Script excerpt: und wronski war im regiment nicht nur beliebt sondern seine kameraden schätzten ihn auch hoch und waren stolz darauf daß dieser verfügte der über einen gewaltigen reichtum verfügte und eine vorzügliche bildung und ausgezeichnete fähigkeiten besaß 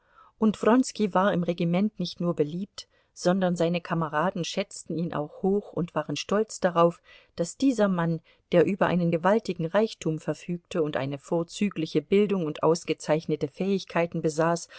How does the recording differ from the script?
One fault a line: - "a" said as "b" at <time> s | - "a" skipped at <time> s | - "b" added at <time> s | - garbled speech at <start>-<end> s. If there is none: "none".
- "verfügte" said as "mann" at 7.9 s